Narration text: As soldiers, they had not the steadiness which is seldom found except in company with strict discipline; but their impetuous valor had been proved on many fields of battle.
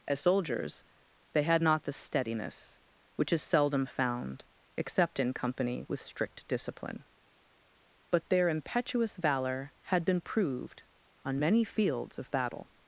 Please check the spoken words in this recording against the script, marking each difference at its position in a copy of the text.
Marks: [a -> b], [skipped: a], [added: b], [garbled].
As soldiers, they had not the steadiness which is seldom found except in company with strict discipline; but their impetuous valor had been proved on many fields of battle.